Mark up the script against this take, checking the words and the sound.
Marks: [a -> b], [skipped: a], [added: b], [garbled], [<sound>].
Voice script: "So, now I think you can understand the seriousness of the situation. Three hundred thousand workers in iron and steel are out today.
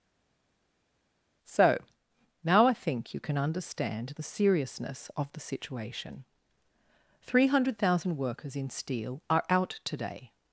"So, now I think you can understand the seriousness of the situation. Three hundred thousand workers in [skipped: iron and] steel are out today.